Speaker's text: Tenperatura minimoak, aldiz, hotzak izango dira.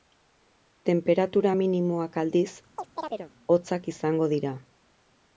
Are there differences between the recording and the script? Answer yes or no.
no